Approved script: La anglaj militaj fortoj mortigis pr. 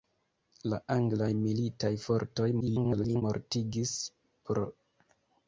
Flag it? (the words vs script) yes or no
yes